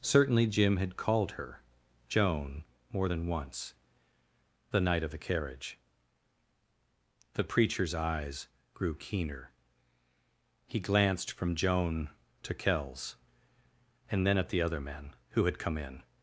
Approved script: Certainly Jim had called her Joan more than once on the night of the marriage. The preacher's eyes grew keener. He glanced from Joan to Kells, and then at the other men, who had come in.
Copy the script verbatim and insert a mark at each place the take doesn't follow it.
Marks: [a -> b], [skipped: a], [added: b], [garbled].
Certainly Jim had called her Joan more than once [skipped: on] the night of the [marriage. -> carriage] The preacher's eyes grew keener. He glanced from Joan to Kells, and then at the other men, who had come in.